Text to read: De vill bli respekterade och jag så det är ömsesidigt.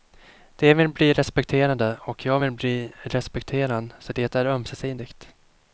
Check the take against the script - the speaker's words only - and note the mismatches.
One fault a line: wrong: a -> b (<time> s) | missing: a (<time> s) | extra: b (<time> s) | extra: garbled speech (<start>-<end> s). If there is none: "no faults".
extra: vill bli respekterad (2.4 s)